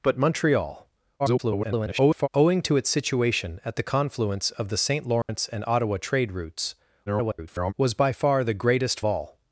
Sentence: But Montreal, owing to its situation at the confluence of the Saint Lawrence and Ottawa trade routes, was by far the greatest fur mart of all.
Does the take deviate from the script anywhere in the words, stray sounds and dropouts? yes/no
yes